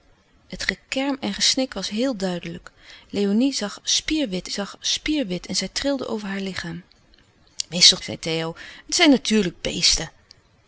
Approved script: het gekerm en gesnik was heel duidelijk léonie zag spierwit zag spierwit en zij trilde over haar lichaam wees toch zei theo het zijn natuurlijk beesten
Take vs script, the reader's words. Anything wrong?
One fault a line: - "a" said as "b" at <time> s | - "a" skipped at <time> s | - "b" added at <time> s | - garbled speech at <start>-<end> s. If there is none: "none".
none